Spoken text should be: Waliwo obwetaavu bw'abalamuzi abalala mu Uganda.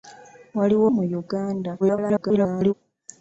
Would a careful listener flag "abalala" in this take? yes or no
yes